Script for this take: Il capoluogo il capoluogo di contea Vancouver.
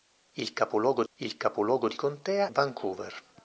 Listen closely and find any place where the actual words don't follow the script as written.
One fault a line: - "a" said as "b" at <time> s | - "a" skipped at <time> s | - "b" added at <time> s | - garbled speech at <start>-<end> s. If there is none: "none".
none